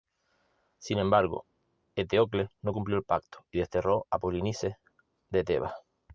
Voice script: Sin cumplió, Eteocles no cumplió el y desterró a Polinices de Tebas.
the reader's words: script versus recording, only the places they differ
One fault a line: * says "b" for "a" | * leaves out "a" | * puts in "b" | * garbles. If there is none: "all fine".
* says "embargo" for "cumplió"
* puts in "pacto"